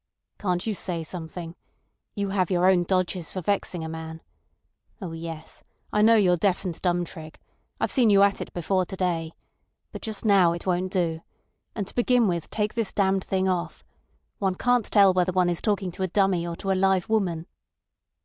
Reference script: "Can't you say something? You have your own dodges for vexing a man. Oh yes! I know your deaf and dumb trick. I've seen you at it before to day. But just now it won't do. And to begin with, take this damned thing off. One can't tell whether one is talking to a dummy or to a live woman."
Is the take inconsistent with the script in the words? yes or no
no